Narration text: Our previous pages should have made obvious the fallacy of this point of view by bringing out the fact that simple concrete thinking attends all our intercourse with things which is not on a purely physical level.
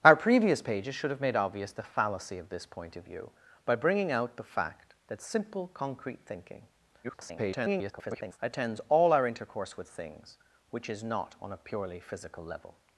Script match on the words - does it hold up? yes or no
no